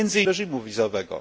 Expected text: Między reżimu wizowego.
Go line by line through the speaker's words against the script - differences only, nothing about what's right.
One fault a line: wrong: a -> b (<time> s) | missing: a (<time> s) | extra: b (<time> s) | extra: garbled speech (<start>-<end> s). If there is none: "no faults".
no faults